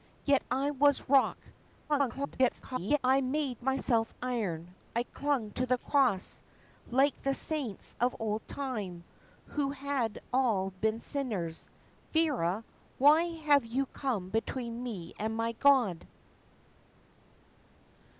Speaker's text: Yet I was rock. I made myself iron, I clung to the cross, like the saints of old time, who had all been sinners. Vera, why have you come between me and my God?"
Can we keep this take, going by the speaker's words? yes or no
no